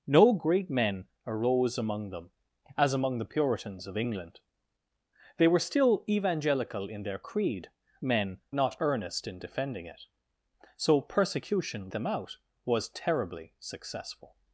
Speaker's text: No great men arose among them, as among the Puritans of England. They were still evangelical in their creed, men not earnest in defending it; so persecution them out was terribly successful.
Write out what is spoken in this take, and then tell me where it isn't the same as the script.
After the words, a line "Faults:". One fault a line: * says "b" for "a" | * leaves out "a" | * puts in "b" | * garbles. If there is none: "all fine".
No great men arose among them, as among the Puritans of England. They were still evangelical in their creed, men not earnest in defending it; so persecution them out was terribly successful.
Faults:
all fine